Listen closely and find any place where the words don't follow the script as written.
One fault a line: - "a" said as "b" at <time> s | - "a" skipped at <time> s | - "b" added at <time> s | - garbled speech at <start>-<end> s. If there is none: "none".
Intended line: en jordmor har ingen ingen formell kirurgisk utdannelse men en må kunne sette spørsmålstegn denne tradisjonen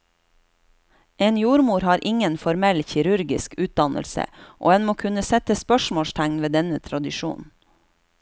- "ingen" skipped at 2.4 s
- "men" said as "og" at 4.6 s
- "ved" added at 6.5 s